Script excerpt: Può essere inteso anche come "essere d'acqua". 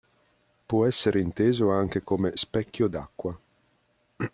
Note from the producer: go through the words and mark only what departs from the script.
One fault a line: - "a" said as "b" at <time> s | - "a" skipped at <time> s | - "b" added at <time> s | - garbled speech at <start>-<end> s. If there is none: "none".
- "essere" said as "specchio" at 2.3 s